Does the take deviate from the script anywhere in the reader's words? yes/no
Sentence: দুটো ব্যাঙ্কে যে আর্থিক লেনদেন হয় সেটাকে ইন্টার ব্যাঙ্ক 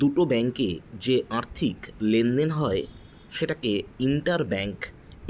no